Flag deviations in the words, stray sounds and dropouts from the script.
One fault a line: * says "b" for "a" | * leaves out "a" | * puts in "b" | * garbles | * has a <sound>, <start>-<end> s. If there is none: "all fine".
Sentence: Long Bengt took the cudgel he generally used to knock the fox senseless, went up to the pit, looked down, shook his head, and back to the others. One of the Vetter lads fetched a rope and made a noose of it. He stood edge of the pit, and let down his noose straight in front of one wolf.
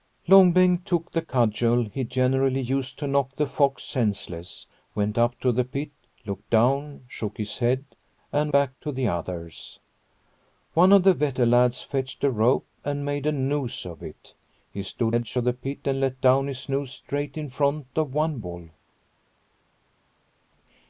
all fine